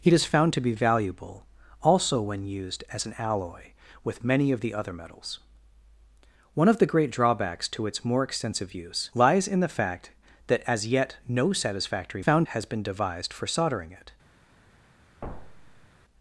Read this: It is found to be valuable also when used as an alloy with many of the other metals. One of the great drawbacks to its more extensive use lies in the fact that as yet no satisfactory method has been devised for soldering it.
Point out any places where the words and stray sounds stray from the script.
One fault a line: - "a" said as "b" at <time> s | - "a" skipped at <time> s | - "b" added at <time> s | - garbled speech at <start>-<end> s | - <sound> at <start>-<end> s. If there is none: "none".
- "method" said as "found" at 12.2 s
- thud at 15.2-15.9 s